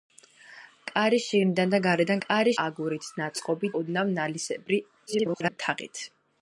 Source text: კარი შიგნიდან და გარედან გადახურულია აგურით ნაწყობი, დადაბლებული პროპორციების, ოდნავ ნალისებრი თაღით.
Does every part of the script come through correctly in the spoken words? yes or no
no